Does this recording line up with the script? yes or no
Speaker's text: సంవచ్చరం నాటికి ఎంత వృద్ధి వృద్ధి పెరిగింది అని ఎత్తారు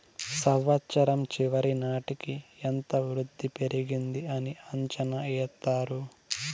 no